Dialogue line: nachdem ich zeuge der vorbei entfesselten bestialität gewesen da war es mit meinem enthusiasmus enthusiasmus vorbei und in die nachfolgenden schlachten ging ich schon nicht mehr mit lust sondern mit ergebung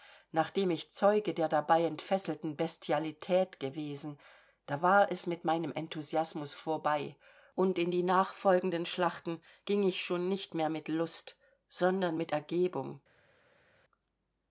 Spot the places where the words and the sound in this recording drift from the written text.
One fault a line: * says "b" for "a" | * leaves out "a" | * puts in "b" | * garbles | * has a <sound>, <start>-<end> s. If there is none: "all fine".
* says "dabei" for "vorbei"
* leaves out "enthusiasmus"